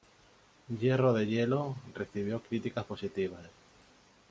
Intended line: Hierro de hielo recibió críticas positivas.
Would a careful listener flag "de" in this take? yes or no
no